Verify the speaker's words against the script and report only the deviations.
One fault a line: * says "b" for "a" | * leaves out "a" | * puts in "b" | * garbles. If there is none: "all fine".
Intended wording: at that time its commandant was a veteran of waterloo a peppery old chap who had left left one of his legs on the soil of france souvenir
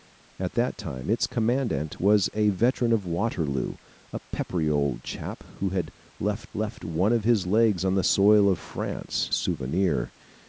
all fine